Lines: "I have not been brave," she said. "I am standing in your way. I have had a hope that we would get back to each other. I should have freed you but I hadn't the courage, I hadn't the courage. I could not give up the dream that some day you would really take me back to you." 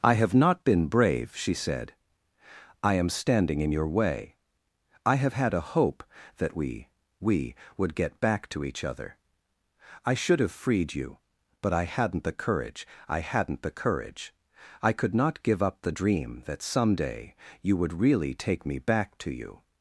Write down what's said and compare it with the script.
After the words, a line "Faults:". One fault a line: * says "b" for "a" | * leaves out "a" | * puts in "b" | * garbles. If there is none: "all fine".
"I have not been brave," she said. "I am standing in your way. I have had a hope that we we would get back to each other. I should have freed you but I hadn't the courage, I hadn't the courage. I could not give up the dream that some day you would really take me back to you."
Faults:
* puts in "we"